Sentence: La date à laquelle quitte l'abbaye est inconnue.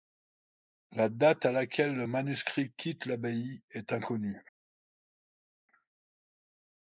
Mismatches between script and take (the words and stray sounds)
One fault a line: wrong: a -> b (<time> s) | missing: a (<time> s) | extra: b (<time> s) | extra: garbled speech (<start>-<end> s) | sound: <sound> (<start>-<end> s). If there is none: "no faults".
extra: le manuscrit (1.9 s)